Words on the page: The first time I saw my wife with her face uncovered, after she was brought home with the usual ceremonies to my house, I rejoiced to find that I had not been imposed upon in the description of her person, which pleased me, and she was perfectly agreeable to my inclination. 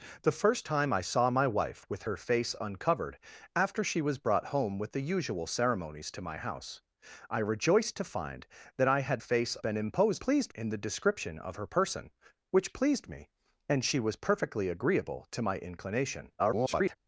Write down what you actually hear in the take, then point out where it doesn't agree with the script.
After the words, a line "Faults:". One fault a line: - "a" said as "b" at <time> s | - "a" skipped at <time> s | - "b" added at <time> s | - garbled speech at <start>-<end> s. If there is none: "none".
The first time I saw my wife with her face uncovered, after she was brought home with the usual ceremonies to my house, I rejoiced to find that I had face been imposed pleased in the description of her person, which pleased me, and she was perfectly agreeable to my inclination. [garbled]
Faults:
- "not" said as "face" at 9.2 s
- "upon" said as "pleased" at 10.2 s
- garbled speech at 16.4-17.0 s